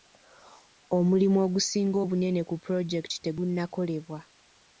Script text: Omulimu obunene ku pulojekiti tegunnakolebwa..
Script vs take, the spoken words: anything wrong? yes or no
yes